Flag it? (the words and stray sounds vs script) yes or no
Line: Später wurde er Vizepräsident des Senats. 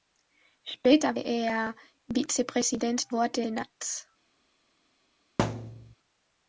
yes